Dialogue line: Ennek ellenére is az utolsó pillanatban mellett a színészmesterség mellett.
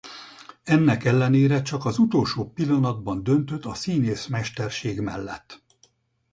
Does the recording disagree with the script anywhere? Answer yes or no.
yes